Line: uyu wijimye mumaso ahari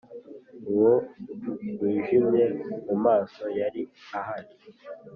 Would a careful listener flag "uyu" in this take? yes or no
yes